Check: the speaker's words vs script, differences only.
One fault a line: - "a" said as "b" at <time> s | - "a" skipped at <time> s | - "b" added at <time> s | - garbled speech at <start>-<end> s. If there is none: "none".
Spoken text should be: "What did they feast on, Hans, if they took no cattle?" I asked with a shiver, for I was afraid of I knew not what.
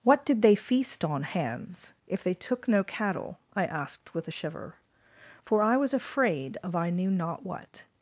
none